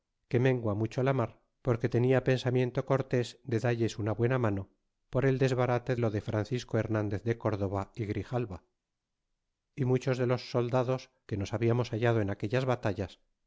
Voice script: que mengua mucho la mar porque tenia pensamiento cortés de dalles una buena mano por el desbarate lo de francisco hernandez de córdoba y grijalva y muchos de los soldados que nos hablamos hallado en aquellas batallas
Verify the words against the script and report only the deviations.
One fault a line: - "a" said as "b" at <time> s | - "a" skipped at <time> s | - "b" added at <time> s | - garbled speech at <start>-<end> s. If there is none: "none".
none